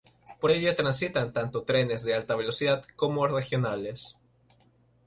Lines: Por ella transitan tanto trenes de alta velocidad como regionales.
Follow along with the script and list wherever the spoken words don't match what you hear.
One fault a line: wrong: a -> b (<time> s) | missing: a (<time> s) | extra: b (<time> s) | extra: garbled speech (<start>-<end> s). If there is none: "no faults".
no faults